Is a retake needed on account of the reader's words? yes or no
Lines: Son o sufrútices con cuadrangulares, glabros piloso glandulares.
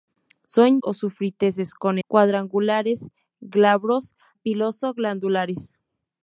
no